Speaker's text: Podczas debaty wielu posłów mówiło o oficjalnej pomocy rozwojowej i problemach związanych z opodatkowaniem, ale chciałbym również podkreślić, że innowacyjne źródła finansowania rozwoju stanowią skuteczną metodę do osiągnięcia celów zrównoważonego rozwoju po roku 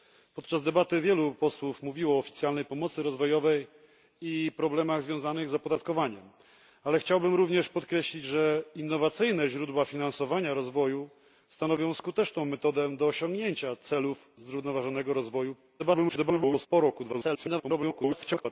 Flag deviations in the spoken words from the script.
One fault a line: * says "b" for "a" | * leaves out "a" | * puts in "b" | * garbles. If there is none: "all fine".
* garbles
* garbles